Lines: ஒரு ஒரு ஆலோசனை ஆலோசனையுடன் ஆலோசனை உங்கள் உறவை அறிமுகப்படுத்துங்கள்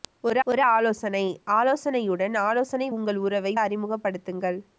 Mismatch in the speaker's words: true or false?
false